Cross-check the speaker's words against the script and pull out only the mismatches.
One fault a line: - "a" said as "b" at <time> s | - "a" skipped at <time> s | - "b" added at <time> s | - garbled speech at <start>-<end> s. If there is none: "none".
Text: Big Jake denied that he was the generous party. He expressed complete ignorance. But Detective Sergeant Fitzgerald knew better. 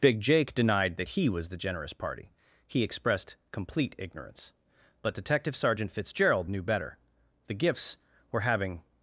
- "The gifts were having" added at 7.4 s